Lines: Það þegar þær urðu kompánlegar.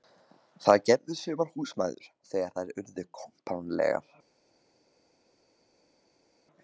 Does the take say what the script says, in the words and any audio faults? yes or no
no